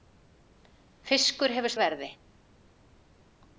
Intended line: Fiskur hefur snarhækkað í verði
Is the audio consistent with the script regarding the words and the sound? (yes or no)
no